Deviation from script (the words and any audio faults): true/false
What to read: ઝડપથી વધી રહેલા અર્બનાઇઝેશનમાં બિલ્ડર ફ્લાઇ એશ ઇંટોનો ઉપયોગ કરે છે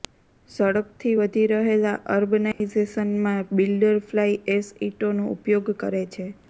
true